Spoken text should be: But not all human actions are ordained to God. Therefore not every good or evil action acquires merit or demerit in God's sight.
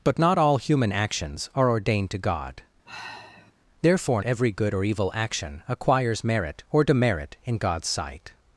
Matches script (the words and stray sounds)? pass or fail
fail